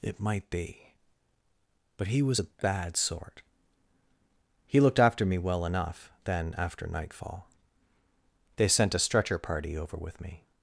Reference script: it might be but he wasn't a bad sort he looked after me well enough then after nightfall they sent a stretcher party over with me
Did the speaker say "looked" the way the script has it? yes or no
yes